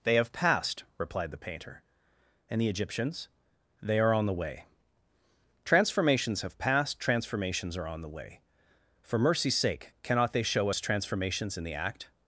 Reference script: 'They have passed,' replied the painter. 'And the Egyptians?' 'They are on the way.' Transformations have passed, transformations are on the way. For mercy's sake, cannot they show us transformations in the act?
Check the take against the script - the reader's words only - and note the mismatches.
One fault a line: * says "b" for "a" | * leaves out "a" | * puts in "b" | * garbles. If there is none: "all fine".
all fine